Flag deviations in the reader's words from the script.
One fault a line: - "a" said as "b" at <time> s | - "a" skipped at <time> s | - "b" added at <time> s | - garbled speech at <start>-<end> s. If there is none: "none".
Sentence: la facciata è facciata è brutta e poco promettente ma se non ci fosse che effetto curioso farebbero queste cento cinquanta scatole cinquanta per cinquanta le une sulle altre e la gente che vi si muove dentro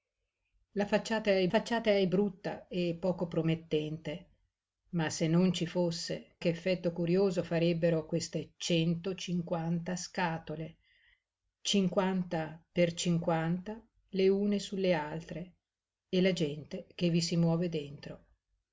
none